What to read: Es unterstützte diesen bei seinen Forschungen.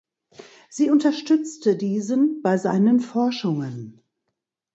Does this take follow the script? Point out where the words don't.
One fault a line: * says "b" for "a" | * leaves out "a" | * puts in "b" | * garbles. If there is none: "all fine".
* says "Sie" for "Es"